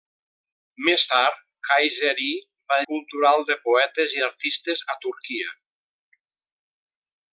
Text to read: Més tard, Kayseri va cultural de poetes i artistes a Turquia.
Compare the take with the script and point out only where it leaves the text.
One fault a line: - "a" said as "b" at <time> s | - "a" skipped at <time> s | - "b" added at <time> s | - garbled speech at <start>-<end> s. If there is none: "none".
none